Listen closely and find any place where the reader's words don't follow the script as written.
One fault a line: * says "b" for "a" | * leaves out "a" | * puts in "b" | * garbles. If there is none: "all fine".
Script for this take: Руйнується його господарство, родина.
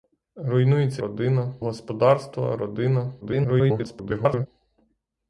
* says "родина" for "його"
* garbles